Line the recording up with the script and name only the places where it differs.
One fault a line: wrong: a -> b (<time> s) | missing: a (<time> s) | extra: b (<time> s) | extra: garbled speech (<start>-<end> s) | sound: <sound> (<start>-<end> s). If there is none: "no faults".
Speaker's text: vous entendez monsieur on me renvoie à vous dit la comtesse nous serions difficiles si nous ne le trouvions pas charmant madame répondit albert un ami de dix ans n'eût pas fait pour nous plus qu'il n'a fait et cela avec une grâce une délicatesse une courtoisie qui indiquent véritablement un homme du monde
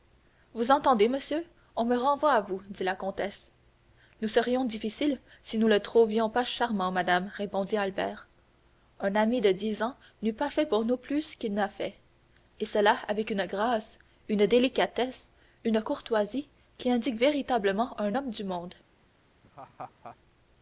sound: laugh (19.4-20.2 s)